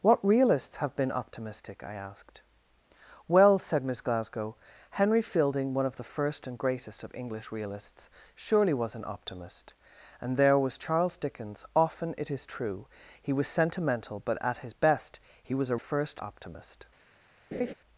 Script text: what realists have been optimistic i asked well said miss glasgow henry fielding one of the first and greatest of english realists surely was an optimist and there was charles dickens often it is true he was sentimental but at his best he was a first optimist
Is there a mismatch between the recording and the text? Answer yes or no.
no